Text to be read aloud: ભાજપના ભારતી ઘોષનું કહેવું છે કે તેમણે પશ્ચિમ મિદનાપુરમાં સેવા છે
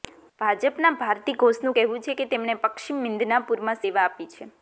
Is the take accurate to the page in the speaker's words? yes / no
no